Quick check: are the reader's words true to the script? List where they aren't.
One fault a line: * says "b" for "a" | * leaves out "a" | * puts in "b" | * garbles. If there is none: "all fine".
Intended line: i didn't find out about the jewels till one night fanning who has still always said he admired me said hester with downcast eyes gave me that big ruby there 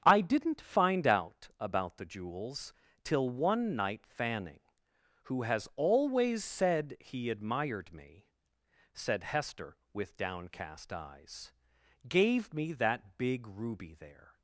* leaves out "still"